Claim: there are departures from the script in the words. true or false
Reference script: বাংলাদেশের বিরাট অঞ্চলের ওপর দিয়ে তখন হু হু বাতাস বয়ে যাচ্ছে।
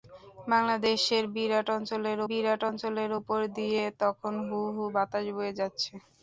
true